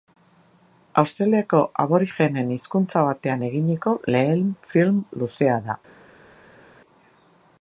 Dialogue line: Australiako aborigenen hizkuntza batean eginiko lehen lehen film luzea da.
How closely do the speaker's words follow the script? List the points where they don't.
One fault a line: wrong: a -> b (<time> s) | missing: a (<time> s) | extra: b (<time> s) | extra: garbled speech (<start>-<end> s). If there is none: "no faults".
missing: lehen (4.5 s)